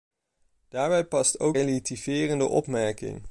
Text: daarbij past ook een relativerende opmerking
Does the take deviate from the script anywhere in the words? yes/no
yes